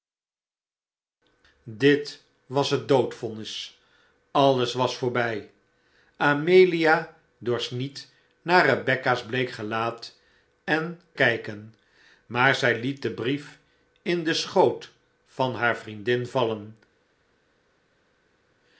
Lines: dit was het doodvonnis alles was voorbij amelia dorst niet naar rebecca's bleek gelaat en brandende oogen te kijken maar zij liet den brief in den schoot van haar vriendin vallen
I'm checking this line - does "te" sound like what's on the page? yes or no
no